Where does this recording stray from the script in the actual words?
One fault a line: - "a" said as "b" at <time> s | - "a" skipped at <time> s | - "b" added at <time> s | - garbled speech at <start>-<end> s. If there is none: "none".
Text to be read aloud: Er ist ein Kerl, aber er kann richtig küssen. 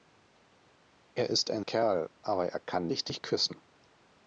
none